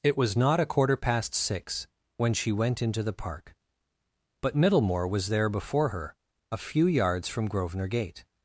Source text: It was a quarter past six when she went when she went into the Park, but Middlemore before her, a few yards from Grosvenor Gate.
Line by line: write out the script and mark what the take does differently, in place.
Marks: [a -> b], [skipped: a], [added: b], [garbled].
It was [added: not] a quarter past six when she went [skipped: when she went] into the Park, but Middlemore [added: was there] before her, a few yards from Grosvenor Gate.